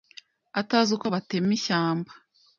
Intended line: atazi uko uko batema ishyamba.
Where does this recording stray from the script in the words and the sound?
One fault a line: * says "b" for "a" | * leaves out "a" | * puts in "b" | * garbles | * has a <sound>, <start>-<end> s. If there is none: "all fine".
* leaves out "uko"